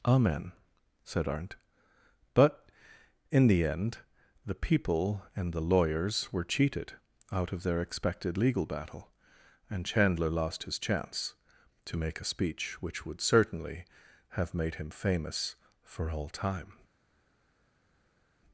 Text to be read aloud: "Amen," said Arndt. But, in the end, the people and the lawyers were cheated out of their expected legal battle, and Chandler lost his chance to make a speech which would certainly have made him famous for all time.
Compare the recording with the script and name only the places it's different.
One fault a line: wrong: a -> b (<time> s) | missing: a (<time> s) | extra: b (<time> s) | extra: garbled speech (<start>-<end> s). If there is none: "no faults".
no faults